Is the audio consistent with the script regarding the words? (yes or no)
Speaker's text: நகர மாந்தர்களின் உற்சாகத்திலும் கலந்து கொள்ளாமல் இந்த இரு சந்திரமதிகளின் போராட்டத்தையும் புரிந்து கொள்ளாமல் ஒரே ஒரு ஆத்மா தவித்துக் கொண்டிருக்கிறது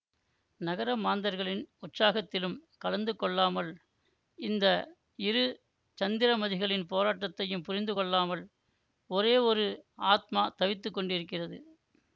yes